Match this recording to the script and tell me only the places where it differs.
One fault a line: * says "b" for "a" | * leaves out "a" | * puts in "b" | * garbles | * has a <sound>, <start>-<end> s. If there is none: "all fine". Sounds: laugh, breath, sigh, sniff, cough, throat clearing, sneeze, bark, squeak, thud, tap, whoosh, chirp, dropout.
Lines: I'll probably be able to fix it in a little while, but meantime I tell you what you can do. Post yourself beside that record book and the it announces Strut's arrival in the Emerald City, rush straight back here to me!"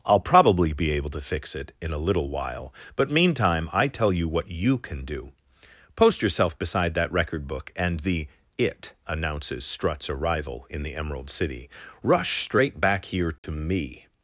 * has a dropout, 13.4-13.4 s